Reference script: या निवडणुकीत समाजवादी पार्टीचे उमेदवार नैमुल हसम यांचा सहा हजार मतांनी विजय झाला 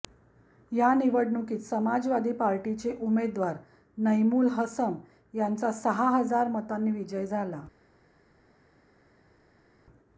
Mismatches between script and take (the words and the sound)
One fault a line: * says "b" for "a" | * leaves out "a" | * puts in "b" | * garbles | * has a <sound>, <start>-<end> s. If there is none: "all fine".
all fine